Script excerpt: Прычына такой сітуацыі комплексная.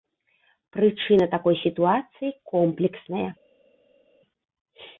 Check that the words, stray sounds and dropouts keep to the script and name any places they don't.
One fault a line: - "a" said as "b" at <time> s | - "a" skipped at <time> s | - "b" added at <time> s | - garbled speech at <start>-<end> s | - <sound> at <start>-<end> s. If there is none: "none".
none